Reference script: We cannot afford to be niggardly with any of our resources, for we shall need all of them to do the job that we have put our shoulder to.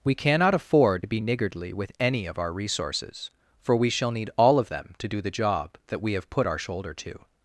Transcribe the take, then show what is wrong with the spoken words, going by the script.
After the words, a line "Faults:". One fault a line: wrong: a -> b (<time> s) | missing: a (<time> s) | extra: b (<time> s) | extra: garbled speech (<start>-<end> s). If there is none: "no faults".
We cannot afford to be niggardly with any of our resources, for we shall need all of them to do the job that we have put our shoulder to.
Faults:
no faults